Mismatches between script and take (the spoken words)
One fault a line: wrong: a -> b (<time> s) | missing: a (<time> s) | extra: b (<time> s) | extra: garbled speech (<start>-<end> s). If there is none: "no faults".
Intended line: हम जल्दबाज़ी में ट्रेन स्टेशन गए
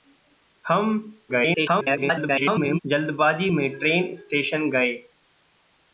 extra: garbled speech (1.3-2.8 s)